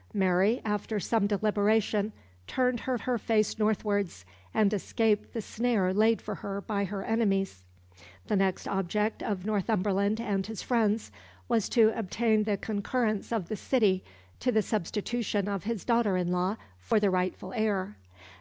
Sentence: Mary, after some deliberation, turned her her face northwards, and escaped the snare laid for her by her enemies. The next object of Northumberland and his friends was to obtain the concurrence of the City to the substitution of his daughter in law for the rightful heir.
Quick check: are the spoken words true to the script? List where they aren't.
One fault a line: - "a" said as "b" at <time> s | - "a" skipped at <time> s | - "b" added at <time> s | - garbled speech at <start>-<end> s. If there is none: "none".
none